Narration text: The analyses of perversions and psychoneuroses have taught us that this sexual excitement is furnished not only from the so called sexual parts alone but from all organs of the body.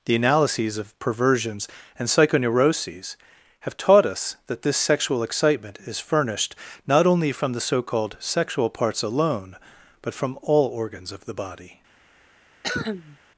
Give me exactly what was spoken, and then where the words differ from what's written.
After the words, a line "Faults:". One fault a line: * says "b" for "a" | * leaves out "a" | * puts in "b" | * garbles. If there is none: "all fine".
The analyses of perversions and psychoneuroses have taught us that this sexual excitement is furnished not only from the so called sexual parts alone but from all organs of the body.
Faults:
all fine